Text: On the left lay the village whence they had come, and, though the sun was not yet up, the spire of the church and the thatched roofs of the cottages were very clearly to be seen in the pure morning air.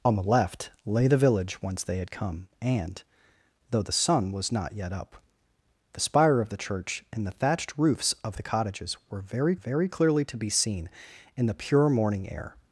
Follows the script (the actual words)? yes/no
no